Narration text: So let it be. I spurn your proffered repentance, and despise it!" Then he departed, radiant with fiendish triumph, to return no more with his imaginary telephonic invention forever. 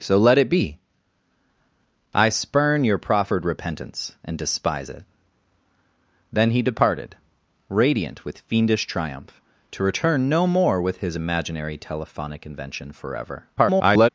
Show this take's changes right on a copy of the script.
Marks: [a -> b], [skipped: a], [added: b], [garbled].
So let it be. I spurn your proffered repentance, and despise it!" Then he departed, radiant with fiendish triumph, to return no more with his imaginary telephonic invention forever. [garbled]